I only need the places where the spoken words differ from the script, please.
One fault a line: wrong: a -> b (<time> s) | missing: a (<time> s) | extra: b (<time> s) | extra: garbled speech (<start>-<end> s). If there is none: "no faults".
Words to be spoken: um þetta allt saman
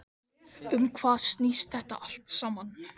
extra: hvað snýst (1.0 s)